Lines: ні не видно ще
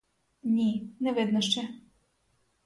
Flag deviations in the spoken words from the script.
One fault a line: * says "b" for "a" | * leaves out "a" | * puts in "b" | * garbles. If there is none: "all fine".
all fine